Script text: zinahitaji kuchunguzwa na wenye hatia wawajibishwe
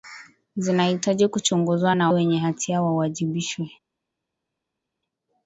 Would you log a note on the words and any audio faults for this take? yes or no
no